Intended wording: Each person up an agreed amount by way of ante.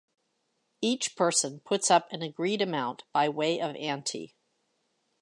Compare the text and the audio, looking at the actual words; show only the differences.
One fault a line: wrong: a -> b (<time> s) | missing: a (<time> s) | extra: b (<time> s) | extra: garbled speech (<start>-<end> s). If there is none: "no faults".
extra: puts (1.6 s)